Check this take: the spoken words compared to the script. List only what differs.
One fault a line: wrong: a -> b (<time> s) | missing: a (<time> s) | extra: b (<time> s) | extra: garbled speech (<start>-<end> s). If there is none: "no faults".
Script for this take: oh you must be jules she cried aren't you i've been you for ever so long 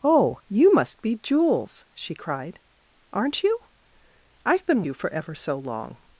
no faults